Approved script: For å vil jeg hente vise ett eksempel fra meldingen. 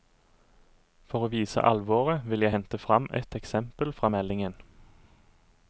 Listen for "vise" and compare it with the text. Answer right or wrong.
wrong